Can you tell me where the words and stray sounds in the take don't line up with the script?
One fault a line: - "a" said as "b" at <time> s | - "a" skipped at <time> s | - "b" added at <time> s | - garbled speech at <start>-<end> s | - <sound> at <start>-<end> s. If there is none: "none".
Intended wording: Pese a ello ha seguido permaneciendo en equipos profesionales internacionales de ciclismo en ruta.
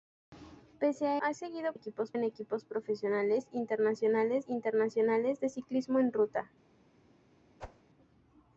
- "ello" skipped at 1.2 s
- "permaneciendo" said as "equipos" at 1.7 s
- "internacionales" added at 4.5 s
- whoosh at 7.6-7.8 s